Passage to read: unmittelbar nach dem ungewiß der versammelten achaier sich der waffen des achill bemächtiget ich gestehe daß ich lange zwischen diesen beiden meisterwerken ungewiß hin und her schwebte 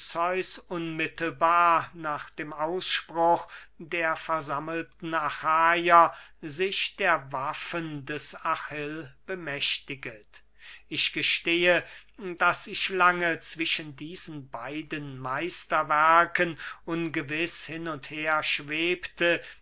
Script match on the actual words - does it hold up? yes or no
no